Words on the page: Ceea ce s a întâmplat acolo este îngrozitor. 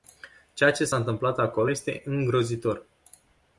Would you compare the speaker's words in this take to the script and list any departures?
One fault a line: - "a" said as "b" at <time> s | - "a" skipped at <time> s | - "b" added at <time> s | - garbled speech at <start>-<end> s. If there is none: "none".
none